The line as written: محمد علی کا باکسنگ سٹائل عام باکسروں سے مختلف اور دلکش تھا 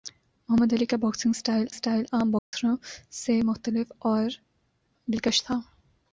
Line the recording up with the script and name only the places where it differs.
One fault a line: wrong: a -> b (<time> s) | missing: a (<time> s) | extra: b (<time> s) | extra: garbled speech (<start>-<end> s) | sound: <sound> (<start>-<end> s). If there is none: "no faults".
extra: سٹائل (1.7 s)
sound: dropout (2.4-2.5 s)